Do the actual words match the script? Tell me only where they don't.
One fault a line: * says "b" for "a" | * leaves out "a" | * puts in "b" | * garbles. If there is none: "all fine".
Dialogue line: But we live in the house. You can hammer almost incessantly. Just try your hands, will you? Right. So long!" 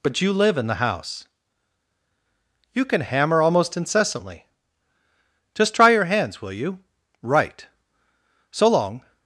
* says "you" for "we"